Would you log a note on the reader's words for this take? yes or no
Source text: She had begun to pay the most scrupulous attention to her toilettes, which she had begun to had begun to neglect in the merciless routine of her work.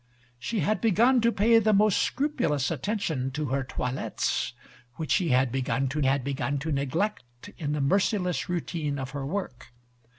no